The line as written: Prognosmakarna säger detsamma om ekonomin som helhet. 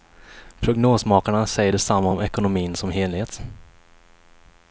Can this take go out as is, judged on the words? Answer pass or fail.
pass